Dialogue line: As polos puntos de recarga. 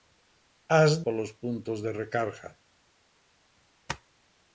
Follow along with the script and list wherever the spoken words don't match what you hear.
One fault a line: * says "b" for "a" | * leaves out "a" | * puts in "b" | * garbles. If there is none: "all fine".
all fine